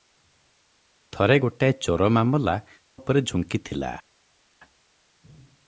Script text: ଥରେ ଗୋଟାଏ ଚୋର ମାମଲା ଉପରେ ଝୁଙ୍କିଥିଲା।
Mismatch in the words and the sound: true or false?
false